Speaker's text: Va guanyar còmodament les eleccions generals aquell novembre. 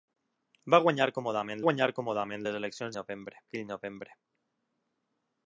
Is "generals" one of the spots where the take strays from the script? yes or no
yes